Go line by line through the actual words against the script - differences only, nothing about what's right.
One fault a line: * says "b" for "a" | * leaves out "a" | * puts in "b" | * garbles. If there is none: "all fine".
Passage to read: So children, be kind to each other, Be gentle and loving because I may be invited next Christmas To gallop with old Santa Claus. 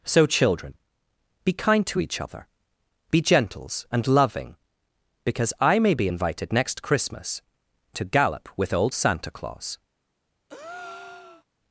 * says "gentles" for "gentle"